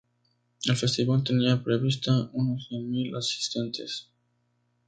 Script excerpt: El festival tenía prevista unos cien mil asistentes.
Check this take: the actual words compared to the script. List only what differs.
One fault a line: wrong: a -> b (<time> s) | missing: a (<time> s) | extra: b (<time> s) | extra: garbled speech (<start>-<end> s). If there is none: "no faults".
no faults